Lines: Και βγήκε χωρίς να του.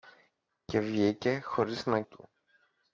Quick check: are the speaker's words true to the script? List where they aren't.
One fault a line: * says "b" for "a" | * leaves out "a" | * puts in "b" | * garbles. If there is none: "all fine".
all fine